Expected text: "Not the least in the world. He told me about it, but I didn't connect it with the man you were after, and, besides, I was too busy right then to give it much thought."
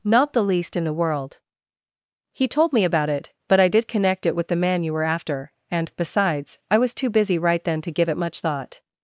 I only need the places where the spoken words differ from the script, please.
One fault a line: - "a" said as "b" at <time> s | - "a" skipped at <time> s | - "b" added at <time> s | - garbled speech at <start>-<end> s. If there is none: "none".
- "didn't" said as "did" at 3.7 s